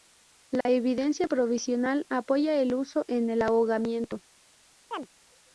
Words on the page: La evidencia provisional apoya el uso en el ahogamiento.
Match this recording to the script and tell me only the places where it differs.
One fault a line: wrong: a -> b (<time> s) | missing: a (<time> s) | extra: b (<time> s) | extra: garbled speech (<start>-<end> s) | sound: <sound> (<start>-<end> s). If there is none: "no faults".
sound: dropout (0.6-0.7 s)
sound: chirp (4.9-5.1 s)